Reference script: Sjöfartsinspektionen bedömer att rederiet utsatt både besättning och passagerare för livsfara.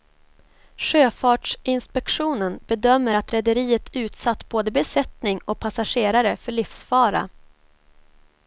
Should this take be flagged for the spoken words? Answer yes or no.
no